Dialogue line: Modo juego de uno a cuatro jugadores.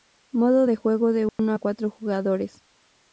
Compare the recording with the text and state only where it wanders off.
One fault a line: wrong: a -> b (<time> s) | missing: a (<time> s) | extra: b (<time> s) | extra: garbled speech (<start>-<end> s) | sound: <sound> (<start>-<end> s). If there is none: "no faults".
extra: de (0.6 s)
sound: dropout (1.3-1.4 s)